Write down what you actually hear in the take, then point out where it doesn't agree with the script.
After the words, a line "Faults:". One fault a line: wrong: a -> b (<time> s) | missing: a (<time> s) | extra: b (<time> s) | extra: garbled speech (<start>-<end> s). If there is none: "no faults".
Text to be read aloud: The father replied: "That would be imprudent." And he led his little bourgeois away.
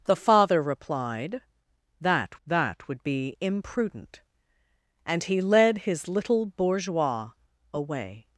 The father replied: "That that would be imprudent." And he led his little bourgeois away.
Faults:
extra: that (2.4 s)